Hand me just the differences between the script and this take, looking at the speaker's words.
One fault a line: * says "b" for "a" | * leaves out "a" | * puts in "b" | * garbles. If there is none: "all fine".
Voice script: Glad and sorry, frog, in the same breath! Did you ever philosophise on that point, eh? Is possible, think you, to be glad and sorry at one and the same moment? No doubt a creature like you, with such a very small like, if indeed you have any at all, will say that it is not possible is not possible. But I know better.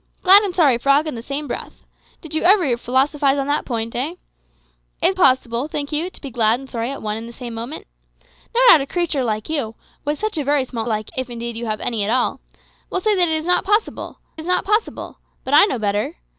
all fine